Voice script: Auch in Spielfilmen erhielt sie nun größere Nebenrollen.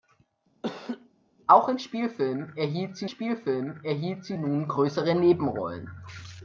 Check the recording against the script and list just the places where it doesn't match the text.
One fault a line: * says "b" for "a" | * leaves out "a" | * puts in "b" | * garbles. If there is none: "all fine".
* puts in "Spielfilmen erhielt sie"